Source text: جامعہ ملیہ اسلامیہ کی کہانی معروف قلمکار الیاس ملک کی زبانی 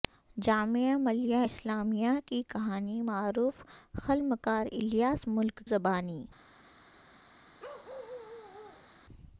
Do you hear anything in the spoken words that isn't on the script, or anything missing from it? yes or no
yes